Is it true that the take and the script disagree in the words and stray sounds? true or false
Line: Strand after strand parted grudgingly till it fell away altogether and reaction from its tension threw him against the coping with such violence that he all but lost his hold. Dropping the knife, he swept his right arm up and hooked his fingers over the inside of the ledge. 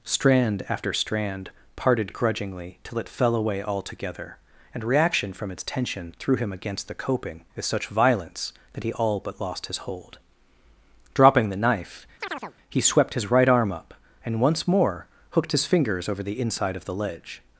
true